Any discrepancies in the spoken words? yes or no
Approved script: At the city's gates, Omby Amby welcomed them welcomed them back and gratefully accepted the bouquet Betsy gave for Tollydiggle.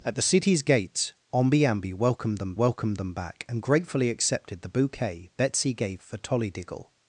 no